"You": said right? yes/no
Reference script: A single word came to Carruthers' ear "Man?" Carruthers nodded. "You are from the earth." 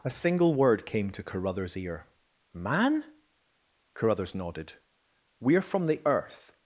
no